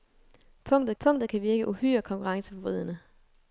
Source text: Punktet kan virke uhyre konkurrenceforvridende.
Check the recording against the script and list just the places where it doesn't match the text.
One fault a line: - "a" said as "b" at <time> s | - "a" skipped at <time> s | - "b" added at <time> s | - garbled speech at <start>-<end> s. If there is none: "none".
- "punktet" added at 1.0 s